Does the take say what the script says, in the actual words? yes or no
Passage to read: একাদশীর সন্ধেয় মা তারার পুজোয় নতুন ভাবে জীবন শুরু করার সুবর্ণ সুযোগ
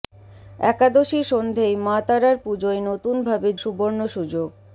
no